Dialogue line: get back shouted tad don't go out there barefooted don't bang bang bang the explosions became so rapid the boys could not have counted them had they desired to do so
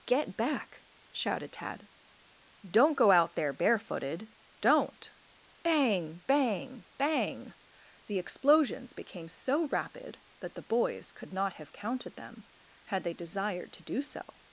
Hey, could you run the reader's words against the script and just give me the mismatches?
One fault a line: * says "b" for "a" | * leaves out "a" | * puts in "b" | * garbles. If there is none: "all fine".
* puts in "that"